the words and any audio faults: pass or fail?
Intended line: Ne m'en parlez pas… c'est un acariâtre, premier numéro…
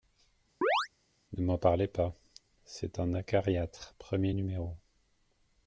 fail